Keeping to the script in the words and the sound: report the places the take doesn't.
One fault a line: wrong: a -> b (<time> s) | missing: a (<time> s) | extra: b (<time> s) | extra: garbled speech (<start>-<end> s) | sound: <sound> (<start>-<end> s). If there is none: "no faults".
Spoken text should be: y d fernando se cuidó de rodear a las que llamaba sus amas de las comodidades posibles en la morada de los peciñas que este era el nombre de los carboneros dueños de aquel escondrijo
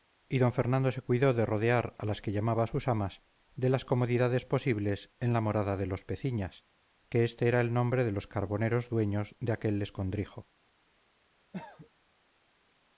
sound: cough (11.5-11.9 s)